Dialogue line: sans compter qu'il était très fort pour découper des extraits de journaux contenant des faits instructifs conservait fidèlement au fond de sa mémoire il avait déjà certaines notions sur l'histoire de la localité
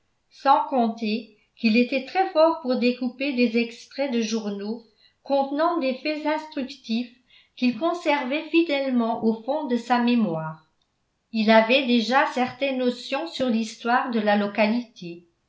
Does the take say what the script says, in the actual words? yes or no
no